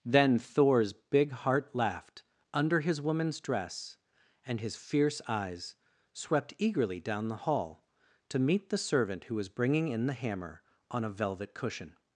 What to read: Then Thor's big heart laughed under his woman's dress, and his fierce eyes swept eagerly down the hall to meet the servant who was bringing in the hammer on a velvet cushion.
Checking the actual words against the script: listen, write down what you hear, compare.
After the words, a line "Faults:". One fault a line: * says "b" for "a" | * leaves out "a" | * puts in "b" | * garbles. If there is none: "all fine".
Then Thor's big heart laughed under his woman's dress, and his fierce eyes swept eagerly down the hall to meet the servant who was bringing in the hammer on a velvet cushion.
Faults:
all fine